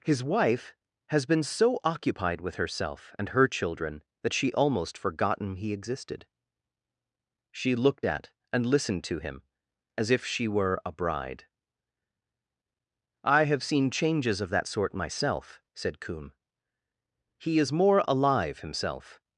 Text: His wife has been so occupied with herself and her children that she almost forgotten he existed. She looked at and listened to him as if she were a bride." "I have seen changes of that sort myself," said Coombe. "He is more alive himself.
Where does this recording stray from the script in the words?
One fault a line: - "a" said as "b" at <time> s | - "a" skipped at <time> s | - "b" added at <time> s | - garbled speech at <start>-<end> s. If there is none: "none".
none